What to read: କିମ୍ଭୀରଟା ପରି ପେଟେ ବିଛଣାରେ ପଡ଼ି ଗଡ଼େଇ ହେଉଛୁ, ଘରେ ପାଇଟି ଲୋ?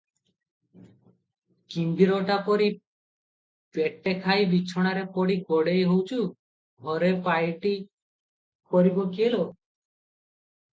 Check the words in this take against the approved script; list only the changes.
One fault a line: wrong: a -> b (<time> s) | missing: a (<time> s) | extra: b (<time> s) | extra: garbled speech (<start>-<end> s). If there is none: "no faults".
extra: ଖାଇ (4.2 s)
extra: କରିବ କିଏ (8.7 s)